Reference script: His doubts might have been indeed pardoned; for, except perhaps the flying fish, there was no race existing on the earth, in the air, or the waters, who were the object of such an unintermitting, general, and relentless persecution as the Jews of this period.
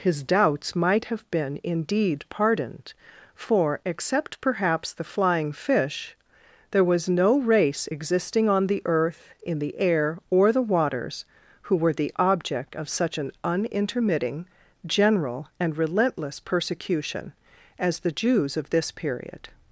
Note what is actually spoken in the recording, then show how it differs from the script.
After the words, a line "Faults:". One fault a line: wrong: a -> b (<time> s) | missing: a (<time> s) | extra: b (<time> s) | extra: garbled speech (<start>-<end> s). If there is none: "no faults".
His doubts might have been indeed pardoned; for, except perhaps the flying fish, there was no race existing on the earth, in the air, or the waters, who were the object of such an unintermitting, general, and relentless persecution as the Jews of this period.
Faults:
no faults